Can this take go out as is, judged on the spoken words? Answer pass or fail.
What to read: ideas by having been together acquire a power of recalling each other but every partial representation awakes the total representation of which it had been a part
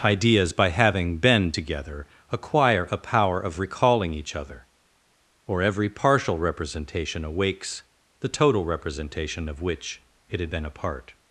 fail